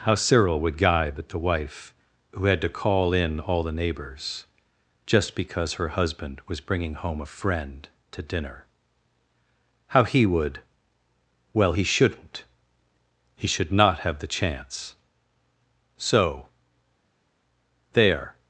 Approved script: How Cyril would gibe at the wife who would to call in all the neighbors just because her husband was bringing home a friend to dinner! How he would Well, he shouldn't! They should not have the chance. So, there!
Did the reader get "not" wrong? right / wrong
right